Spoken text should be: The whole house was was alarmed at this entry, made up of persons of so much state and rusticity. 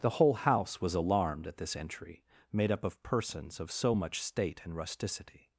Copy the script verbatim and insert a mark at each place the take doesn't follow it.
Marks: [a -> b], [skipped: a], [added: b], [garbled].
The whole house was [skipped: was] alarmed at this entry, made up of persons of so much state and rusticity.